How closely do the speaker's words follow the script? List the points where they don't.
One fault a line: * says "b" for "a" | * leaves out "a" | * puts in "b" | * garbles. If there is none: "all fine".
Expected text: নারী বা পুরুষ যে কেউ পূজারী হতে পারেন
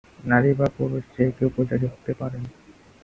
all fine